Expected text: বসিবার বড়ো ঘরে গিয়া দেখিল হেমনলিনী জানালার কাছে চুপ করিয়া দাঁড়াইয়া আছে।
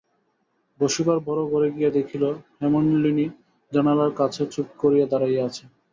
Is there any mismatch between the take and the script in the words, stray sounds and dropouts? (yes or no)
no